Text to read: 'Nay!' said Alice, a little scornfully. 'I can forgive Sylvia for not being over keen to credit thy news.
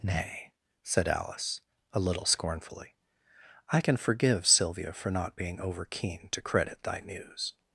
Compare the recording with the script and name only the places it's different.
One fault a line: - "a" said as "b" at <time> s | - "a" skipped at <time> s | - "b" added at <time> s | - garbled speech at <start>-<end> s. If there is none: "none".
none